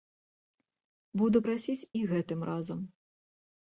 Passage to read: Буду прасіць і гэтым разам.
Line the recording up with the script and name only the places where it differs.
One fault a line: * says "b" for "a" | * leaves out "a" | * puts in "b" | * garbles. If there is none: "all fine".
all fine